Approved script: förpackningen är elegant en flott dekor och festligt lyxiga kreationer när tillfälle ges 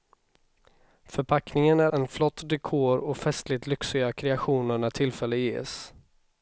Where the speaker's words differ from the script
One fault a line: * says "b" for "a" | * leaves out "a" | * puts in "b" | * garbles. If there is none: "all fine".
* leaves out "elegant"